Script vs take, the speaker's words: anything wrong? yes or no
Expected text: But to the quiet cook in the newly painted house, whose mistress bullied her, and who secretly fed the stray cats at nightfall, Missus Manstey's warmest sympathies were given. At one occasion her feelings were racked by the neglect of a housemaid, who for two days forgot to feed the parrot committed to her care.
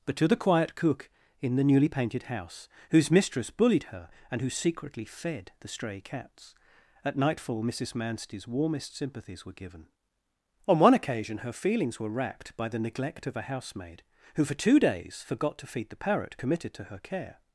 yes